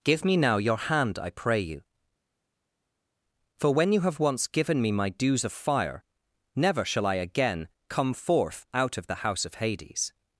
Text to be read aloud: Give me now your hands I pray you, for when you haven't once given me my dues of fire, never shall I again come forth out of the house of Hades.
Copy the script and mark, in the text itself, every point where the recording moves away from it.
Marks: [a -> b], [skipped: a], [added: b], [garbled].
Give me now your [hands -> hand] I pray you, for when you [haven't -> have] once given me my dues of fire, never shall I again come forth out of the house of Hades.